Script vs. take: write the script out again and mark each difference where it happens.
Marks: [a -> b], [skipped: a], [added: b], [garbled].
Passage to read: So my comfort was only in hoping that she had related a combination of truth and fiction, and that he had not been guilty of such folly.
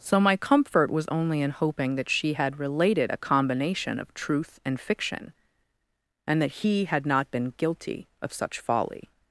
So my comfort was only in hoping that she had related a combination of truth and fiction, and that he had not been guilty of such folly.